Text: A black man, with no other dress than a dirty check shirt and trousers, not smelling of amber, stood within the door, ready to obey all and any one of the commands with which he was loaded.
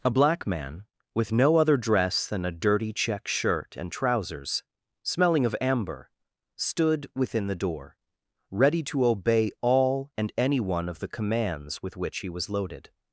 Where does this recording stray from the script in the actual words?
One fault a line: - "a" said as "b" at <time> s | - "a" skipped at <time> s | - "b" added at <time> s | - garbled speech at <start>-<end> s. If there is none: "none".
- "not" skipped at 4.6 s